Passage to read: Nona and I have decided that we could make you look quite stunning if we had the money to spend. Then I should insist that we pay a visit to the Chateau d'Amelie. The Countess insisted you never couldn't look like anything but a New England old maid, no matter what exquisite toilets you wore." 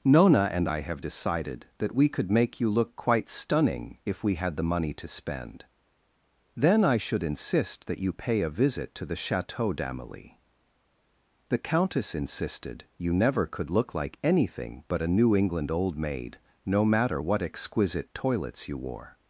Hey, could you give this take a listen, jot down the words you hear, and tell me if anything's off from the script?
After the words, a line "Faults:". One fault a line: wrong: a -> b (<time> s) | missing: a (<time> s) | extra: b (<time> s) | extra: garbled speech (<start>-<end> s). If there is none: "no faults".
Nona and I have decided that we could make you look quite stunning if we had the money to spend. Then I should insist that you pay a visit to the Chateau d'Amelie. The Countess insisted you never could look like anything but a New England old maid, no matter what exquisite toilets you wore."
Faults:
wrong: we -> you (8.0 s)
wrong: couldn't -> could (13.5 s)